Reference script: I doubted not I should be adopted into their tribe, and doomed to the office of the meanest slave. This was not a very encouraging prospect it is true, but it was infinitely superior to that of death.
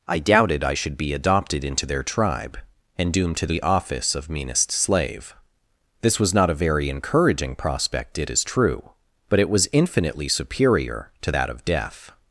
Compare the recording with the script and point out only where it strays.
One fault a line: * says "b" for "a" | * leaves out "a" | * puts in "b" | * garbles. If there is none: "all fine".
* leaves out "not"
* leaves out "the"